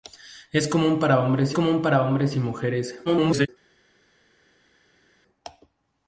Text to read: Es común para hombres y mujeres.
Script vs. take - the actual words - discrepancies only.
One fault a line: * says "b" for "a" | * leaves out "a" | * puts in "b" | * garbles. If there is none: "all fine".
* puts in "común para hombres"
* garbles